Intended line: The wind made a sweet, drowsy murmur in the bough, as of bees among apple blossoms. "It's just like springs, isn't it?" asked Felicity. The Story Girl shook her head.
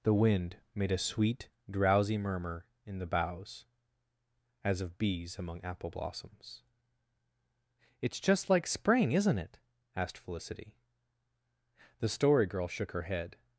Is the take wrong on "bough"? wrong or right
wrong